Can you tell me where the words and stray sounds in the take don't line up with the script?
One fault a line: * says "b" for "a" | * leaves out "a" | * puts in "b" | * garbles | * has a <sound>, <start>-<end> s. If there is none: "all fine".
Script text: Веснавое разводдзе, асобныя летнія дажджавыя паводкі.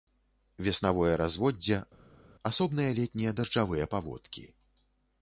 all fine